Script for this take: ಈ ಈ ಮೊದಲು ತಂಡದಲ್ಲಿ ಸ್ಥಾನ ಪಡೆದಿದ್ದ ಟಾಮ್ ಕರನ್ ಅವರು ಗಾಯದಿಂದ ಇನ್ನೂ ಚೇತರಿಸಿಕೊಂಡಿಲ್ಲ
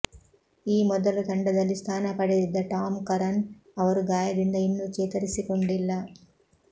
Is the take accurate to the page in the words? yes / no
no